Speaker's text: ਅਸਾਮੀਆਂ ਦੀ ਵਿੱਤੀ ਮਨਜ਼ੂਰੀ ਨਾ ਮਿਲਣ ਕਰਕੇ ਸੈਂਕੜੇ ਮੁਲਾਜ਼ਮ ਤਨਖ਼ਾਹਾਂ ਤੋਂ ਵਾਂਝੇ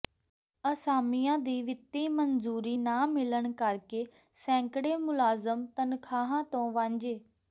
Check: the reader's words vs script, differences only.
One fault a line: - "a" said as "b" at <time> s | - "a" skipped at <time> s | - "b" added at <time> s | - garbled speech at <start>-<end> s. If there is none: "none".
none